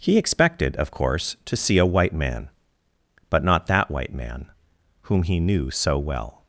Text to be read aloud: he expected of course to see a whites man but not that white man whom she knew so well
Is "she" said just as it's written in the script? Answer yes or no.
no